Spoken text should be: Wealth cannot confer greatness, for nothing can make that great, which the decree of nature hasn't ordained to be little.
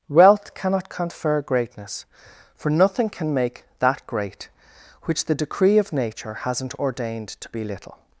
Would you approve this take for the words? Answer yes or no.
yes